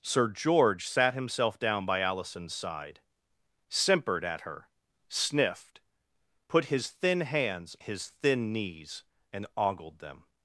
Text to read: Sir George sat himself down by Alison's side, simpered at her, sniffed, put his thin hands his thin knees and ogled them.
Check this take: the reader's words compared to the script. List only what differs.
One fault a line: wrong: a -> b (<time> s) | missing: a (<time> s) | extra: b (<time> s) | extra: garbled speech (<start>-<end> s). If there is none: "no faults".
no faults